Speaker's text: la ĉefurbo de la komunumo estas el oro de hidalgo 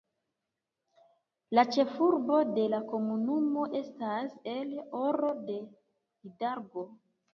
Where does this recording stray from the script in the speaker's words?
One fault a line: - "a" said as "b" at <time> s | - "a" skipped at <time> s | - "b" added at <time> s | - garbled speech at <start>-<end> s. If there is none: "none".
none